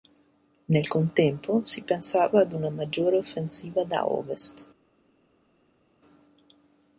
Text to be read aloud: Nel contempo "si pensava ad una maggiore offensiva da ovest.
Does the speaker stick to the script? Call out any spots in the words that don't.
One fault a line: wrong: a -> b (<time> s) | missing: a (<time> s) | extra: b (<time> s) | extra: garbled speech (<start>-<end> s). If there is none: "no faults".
no faults